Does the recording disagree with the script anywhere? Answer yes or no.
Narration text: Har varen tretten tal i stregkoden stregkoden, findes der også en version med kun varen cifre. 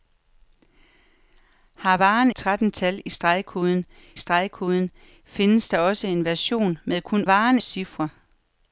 no